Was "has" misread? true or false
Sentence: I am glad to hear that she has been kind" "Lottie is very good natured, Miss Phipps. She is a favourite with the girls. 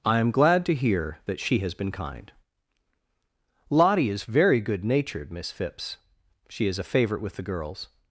false